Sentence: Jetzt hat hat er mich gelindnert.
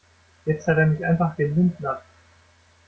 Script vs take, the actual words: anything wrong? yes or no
yes